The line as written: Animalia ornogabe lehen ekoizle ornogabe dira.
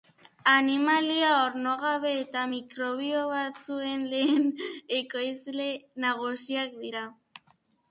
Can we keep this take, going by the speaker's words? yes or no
no